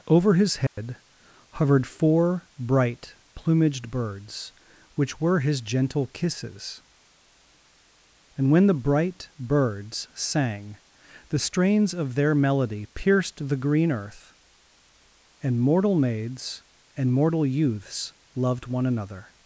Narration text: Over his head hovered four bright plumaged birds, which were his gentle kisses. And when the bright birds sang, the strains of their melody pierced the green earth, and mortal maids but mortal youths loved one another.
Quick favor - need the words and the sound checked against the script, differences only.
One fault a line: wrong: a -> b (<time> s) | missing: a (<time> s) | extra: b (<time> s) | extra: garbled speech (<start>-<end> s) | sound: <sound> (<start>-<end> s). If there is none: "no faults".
sound: dropout (0.7-0.8 s)
wrong: but -> and (17.0 s)